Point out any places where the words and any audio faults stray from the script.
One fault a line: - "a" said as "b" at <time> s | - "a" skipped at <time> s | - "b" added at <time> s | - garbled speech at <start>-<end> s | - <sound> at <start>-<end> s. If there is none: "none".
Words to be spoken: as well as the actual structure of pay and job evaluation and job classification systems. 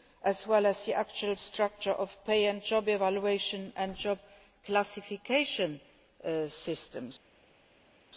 none